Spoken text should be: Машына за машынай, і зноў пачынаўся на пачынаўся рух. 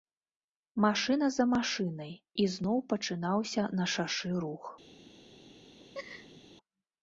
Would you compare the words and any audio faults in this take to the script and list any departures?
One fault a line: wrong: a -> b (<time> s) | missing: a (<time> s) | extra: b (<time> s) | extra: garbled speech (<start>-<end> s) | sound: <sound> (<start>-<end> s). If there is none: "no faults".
wrong: пачынаўся -> шашы (3.9 s)
sound: laugh (5.8-6.4 s)